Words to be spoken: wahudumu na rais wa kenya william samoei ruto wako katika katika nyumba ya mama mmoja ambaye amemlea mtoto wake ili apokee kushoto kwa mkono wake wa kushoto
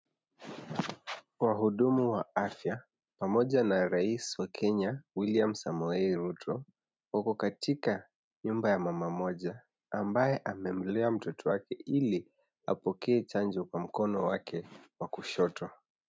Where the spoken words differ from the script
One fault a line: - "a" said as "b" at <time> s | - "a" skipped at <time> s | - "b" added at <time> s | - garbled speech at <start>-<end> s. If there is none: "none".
- "wa afya pamoja" added at 2.1 s
- "katika" skipped at 8.1 s
- "kushoto" said as "chanjo" at 13.2 s